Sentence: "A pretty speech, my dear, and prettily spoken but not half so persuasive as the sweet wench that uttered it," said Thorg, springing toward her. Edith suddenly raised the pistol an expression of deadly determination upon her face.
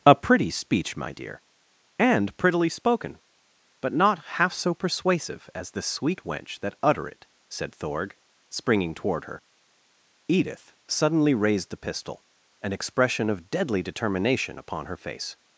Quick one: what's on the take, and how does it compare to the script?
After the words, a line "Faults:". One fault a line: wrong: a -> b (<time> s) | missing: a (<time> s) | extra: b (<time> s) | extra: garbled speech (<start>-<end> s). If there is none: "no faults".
"A pretty speech, my dear, and prettily spoken but not half so persuasive as the sweet wench that utter it," said Thorg, springing toward her. Edith suddenly raised the pistol an expression of deadly determination upon her face.
Faults:
wrong: uttered -> utter (6.8 s)